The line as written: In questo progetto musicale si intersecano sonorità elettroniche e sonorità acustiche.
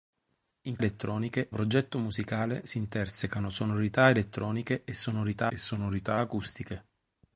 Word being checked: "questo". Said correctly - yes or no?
no